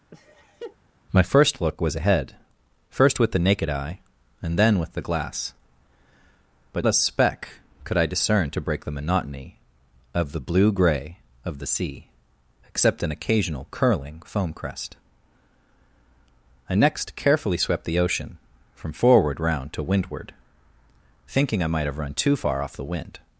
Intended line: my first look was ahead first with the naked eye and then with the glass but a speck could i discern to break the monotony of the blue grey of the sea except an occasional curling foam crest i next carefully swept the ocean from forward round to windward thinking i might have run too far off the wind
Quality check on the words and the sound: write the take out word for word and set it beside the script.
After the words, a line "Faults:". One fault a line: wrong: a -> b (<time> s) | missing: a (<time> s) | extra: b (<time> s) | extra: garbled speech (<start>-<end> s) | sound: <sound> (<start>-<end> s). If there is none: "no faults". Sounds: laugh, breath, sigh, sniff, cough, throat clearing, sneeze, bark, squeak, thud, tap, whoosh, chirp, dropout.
my first look was ahead first with the naked eye and then with the glass but a speck could i discern to break the monotony of the blue grey of the sea except an occasional curling foam crest i next carefully swept the ocean from forward round to windward thinking i might have run too far off the wind
Faults:
sound: laugh (0.1-0.8 s)